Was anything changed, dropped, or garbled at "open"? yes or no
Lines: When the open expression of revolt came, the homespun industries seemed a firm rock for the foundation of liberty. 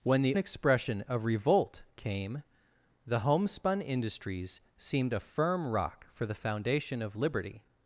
yes